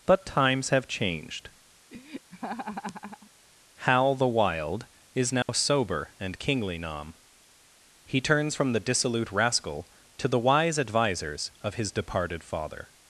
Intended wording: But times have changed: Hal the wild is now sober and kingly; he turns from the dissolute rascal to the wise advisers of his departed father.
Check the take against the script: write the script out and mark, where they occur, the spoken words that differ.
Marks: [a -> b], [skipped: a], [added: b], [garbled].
But times have changed: Hal the wild is now sober and kingly; [added: nom] he turns from the dissolute rascal to the wise advisers of his departed father.